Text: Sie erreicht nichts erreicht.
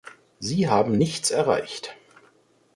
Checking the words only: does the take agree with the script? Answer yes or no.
no